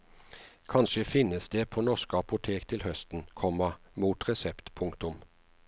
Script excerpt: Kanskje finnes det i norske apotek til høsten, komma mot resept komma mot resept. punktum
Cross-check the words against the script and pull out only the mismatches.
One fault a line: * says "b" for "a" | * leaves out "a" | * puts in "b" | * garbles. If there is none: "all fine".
* says "på" for "i"
* leaves out "komma mot resept"